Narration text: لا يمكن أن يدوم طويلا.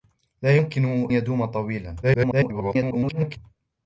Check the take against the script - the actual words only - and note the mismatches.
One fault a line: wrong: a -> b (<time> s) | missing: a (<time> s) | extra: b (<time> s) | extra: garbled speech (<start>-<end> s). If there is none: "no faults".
missing: أن (1.1 s)
extra: garbled speech (2.0-3.4 s)